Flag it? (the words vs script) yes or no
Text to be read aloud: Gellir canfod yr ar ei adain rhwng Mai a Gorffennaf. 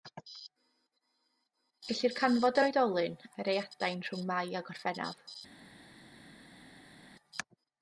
yes